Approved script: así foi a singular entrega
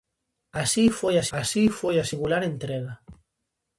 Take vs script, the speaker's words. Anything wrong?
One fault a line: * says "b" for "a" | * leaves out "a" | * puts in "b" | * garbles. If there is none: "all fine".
* puts in "así foi a"